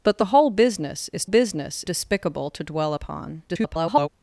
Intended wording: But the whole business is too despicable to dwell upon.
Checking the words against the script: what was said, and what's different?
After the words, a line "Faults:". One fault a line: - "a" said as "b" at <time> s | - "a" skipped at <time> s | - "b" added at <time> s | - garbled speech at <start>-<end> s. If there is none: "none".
But the whole business is business despicable to dwell upon. [garbled]
Faults:
- "too" said as "business" at 1.2 s
- garbled speech at 3.5-4.1 s